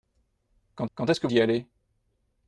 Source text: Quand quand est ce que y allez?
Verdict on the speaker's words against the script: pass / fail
pass